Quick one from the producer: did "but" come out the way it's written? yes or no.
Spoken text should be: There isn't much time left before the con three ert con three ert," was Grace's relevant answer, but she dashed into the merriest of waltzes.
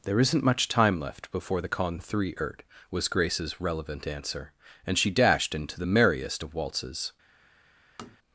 no